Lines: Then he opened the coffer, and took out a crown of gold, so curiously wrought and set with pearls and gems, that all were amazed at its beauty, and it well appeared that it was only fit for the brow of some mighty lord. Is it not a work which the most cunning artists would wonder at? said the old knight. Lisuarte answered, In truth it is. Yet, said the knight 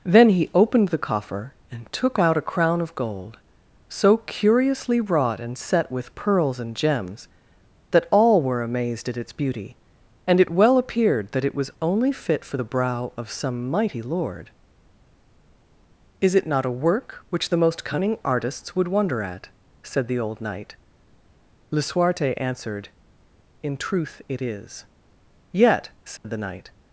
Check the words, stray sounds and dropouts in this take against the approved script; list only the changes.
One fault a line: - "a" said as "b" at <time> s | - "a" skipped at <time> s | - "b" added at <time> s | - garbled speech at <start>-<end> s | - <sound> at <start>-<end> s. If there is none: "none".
- dropout at 26.2-26.2 s